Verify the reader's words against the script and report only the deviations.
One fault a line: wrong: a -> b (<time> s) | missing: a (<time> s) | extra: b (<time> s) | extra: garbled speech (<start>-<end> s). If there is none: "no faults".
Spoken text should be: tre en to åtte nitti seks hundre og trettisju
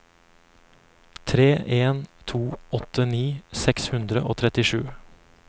no faults